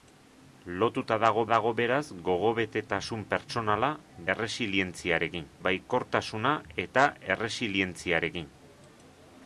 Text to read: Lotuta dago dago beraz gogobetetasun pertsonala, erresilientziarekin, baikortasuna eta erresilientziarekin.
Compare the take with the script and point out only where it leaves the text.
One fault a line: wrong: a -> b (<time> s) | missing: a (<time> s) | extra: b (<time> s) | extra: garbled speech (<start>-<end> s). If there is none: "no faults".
no faults